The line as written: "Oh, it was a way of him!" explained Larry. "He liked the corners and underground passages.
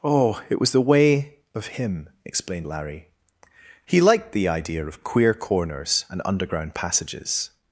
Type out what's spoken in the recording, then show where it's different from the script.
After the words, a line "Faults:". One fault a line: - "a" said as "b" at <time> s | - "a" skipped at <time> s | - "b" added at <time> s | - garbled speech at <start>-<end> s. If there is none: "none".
"Oh, it was the way of him!" explained Larry. "He liked the idea of queer corners and underground passages.
Faults:
- "a" said as "the" at 0.7 s
- "idea of queer" added at 4.5 s